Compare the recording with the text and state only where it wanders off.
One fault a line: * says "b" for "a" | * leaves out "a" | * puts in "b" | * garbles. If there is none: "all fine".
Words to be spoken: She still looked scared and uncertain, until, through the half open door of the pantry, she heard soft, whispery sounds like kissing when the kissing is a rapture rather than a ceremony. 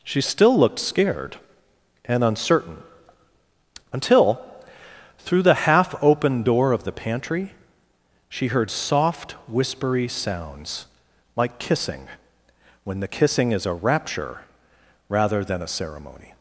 all fine